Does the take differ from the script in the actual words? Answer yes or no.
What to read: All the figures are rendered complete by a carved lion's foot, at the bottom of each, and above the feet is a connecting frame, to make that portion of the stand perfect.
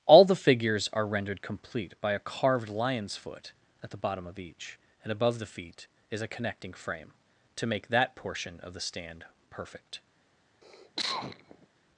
no